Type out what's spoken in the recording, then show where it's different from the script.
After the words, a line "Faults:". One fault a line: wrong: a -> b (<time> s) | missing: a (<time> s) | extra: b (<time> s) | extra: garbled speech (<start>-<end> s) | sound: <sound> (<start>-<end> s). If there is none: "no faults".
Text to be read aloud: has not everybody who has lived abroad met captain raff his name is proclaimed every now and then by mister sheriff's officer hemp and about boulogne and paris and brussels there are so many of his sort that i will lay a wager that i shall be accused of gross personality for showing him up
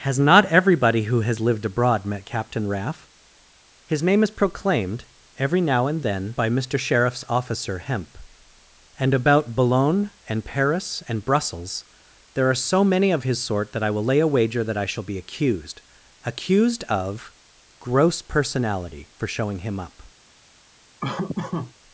has not everybody who has lived abroad met captain raff his name is proclaimed every now and then by mister sheriff's officer hemp and about boulogne and paris and brussels there are so many of his sort that i will lay a wager that i shall be accused accused of gross personality for showing him up
Faults:
extra: accused (16.2 s)
sound: laugh (21.0-21.7 s)